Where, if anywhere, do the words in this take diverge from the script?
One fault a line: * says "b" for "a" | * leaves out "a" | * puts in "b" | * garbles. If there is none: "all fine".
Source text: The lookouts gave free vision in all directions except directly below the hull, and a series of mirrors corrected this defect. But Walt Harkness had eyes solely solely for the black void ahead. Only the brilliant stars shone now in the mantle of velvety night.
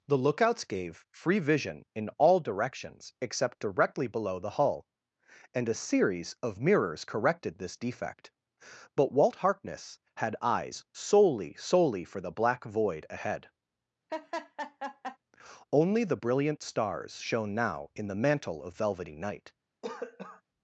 all fine